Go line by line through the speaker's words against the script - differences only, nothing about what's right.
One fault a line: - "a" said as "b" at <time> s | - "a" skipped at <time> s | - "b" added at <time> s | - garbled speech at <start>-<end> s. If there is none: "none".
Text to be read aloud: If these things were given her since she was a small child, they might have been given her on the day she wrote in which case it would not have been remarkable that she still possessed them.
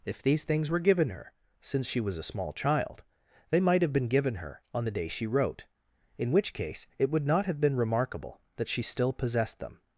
none